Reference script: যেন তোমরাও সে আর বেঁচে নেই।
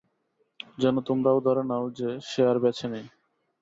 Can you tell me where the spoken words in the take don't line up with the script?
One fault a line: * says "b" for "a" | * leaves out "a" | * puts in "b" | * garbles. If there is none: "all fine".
* puts in "ধরে নাও যে"